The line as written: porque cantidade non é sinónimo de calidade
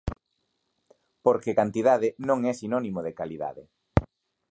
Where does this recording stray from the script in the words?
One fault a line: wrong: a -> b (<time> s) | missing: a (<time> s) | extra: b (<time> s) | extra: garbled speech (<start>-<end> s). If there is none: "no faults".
no faults